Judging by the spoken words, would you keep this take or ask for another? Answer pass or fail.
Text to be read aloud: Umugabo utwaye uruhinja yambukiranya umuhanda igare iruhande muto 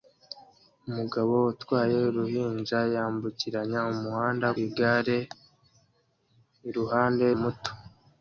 pass